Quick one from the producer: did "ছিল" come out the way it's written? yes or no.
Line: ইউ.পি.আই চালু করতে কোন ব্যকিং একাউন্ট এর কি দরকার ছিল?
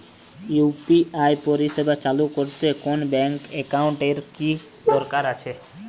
no